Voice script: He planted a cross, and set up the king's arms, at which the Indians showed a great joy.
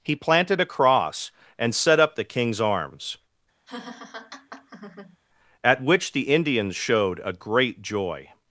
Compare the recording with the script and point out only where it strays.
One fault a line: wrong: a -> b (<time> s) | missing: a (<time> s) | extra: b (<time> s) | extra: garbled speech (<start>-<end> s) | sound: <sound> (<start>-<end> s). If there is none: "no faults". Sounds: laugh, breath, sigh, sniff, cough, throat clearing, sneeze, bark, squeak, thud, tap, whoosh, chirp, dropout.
sound: laugh (3.7-5.2 s)